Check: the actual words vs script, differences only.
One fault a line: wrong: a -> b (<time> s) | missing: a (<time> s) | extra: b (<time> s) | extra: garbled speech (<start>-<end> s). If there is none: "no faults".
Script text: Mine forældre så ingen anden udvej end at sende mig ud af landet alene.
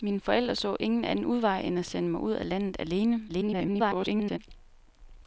extra: garbled speech (3.3-4.4 s)